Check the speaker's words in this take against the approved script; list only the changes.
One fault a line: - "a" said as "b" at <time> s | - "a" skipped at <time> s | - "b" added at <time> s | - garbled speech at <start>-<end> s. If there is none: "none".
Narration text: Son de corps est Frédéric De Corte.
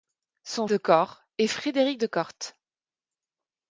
none